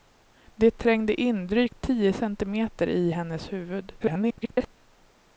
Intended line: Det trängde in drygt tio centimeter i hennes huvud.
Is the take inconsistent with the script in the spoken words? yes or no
yes